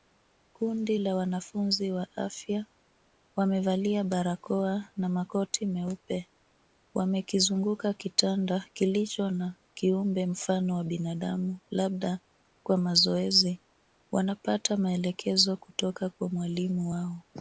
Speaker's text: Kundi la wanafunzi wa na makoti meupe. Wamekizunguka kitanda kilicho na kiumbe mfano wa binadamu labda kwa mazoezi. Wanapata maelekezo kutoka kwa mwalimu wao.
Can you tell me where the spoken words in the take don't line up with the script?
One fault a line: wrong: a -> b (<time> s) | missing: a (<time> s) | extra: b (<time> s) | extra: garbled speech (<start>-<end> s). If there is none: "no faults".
extra: afya wamevalia barakoa (2.2 s)